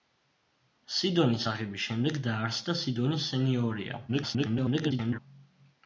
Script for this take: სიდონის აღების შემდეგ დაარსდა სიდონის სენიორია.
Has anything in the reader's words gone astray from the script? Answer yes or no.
yes